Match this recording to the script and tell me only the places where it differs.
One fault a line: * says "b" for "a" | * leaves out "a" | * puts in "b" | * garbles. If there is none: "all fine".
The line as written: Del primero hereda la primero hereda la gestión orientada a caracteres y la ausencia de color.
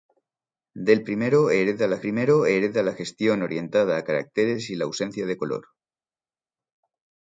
all fine